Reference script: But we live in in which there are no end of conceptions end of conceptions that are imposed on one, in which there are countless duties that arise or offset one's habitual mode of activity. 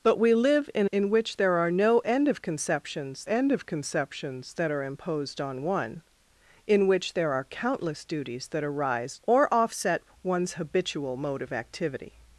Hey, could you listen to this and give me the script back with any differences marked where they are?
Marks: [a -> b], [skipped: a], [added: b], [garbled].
But we live in in which there are no end of conceptions end of conceptions that are imposed on one, in which there are countless duties that arise or offset one's habitual mode of activity.